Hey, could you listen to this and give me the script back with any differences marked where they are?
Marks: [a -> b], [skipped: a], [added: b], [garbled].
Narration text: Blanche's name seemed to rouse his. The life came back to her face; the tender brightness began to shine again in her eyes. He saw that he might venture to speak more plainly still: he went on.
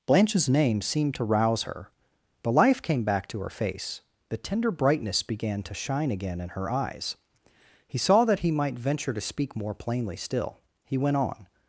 Blanche's name seemed to rouse [his. -> her] The life came back to her face; the tender brightness began to shine again in her eyes. He saw that he might venture to speak more plainly still: he went on.